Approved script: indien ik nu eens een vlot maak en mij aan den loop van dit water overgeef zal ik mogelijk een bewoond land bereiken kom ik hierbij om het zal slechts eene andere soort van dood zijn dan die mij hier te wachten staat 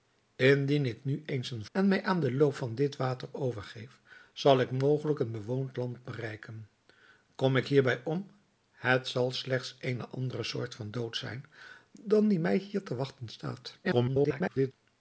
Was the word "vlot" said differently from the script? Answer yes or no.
yes